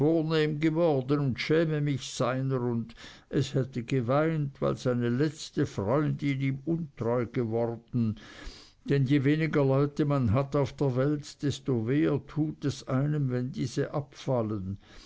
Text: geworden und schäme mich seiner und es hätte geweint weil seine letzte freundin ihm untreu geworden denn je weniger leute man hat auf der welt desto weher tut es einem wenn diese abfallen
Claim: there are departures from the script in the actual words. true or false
false